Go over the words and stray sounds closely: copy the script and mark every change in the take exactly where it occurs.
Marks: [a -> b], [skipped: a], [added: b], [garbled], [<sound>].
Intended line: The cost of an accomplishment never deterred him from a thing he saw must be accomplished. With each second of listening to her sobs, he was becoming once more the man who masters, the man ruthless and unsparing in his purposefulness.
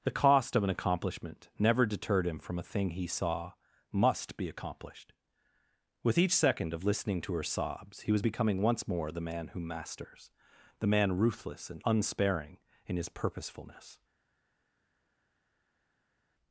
The cost of an accomplishment never deterred him from a thing he saw must be accomplished. With each second of listening to her sobs, he was becoming once more the man who masters, the man ruthless and unsparing in his purposefulness.